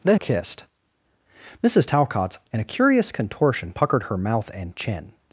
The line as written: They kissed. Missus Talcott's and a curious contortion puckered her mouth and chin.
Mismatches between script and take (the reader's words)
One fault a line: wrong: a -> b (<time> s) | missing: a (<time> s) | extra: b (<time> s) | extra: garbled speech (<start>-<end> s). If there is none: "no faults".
no faults